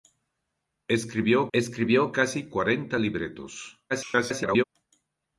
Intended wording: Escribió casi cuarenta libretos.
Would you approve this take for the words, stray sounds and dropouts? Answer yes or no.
no